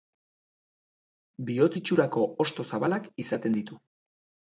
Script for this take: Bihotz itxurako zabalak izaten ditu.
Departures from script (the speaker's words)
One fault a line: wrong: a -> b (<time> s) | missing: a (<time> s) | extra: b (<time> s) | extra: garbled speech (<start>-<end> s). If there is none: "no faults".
extra: hosto (2.5 s)